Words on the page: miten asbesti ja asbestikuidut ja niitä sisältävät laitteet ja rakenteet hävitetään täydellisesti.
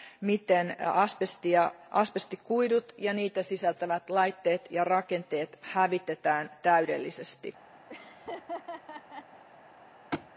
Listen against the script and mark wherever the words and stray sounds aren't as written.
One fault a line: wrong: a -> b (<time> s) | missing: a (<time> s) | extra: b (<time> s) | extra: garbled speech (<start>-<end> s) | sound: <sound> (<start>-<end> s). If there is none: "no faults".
sound: laugh (7.9-9.4 s)
sound: thud (10.1-10.3 s)